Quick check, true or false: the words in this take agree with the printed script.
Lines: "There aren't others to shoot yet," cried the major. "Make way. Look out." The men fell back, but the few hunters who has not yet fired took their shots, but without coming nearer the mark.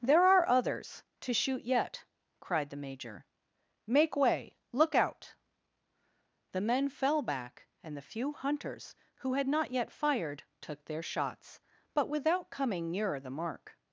false